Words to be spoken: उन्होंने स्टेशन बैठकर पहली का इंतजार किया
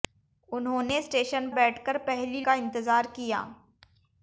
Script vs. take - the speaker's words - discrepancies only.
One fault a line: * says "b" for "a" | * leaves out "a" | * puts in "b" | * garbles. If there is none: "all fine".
all fine